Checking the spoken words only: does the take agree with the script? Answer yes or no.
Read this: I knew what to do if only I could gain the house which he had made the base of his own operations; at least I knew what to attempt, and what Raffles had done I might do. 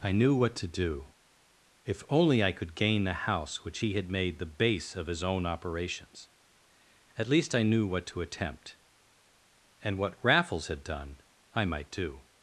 yes